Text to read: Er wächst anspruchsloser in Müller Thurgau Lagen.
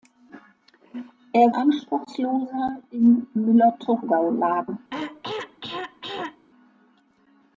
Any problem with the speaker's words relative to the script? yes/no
yes